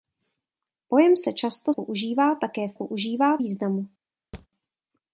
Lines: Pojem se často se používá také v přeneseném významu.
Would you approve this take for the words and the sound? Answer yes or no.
no